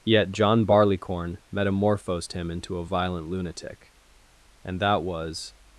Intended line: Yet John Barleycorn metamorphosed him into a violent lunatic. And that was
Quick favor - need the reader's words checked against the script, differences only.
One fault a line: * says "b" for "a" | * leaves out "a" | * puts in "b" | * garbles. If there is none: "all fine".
all fine